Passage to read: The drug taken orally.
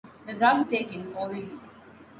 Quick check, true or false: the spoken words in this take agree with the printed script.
true